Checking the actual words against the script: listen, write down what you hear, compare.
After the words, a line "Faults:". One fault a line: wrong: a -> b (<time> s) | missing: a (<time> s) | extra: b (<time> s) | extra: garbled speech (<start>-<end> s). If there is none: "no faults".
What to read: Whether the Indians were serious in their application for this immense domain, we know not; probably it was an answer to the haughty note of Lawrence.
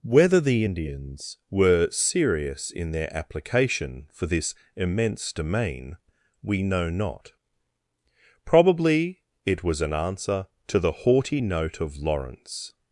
Whether the Indians were serious in their application for this immense domain, we know not; probably it was an answer to the haughty note of Lawrence.
Faults:
no faults